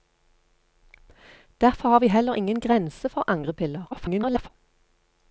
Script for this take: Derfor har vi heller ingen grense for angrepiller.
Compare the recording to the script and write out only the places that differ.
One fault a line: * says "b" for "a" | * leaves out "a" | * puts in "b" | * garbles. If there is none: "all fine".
* garbles